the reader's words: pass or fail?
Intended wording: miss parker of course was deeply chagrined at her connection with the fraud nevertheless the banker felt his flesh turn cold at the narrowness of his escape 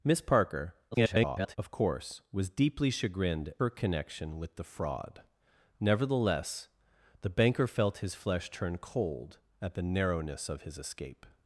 fail